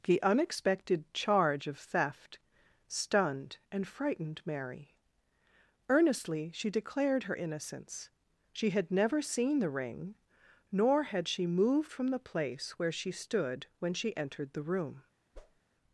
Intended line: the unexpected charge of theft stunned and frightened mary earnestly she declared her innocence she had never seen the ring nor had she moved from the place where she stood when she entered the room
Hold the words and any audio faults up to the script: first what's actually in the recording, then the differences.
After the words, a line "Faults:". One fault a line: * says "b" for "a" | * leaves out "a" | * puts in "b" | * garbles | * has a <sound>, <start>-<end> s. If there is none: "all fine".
the unexpected charge of theft stunned and frightened mary earnestly she declared her innocence she had never seen the ring nor had she moved from the place where she stood when she entered the room
Faults:
* has a whoosh, 15.3-15.6 s